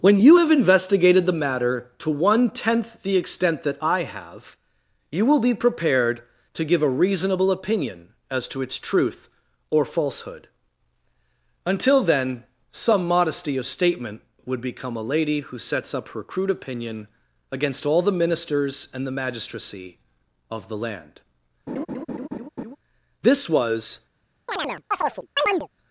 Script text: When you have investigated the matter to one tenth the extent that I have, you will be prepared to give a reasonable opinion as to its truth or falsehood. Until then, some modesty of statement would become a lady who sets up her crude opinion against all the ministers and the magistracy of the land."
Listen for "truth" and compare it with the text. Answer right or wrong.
right